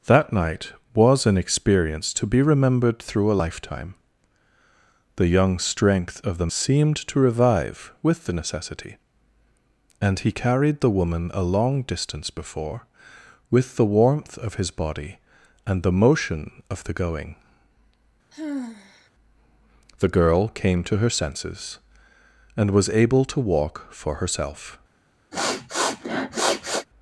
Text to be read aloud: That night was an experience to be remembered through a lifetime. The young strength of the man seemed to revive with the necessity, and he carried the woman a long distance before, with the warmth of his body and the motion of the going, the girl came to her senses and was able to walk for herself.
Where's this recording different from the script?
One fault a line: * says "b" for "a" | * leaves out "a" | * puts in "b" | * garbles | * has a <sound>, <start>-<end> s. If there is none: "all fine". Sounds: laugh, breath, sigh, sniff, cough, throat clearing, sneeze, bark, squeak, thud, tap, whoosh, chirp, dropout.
* leaves out "man"
* has a sigh, 18.3-19.1 s
* has a sniff, 25.3-26.9 s